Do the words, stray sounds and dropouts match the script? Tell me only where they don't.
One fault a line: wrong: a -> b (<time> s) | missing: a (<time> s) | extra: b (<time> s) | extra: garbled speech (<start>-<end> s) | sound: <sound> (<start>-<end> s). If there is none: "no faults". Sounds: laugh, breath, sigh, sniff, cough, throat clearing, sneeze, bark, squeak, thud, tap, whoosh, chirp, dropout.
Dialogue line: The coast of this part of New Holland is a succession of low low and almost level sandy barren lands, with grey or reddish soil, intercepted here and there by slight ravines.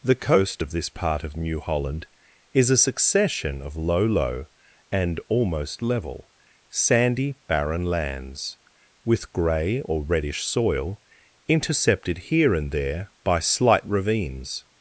no faults